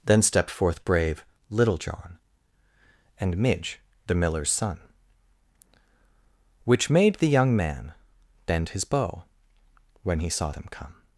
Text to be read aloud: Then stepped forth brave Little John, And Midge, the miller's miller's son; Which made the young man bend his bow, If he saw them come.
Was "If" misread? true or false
true